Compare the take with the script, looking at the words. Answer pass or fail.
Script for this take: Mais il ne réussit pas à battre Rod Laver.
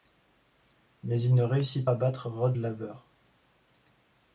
fail